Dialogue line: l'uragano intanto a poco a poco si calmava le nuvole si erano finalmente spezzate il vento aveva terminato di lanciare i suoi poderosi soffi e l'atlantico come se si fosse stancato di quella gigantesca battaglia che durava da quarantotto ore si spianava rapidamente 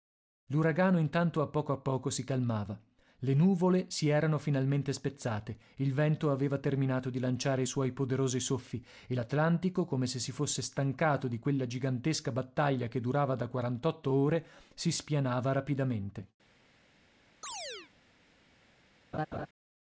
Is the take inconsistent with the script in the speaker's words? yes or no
no